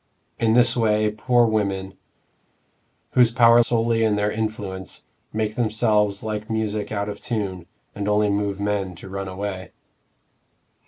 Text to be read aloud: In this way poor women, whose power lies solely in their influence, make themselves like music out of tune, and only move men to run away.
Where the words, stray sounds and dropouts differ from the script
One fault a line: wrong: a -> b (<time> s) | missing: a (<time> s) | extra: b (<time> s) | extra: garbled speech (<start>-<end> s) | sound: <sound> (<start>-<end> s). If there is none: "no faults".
missing: lies (3.6 s)